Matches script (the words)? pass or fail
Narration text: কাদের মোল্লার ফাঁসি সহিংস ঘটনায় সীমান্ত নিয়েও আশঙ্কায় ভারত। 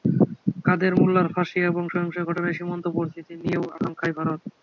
fail